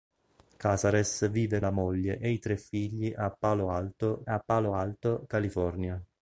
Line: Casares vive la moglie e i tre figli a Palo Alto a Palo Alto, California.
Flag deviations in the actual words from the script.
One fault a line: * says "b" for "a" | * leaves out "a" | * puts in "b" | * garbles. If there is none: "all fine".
all fine